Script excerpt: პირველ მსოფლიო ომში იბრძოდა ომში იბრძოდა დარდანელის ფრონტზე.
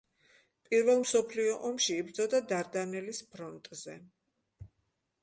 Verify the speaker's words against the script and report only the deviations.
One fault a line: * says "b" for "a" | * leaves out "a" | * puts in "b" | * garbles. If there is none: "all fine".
* leaves out "ომში იბრძოდა"